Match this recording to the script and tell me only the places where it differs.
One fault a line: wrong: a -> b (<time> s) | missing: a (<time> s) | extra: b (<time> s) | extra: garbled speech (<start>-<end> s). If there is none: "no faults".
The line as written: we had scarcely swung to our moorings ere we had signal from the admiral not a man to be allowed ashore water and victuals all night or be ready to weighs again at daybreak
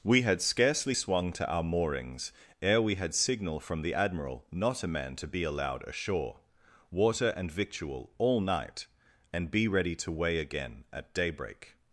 wrong: victuals -> victual (7.5 s)
wrong: or -> and (9.3 s)
wrong: weighs -> weigh (10.1 s)